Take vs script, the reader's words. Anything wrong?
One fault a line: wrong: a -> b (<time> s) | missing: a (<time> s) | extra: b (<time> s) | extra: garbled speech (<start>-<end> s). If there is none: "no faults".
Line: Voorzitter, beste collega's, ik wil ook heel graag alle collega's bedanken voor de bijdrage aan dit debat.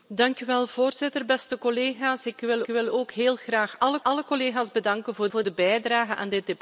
extra: wil (2.7 s)
extra: alle (4.0 s)
extra: voor (5.3 s)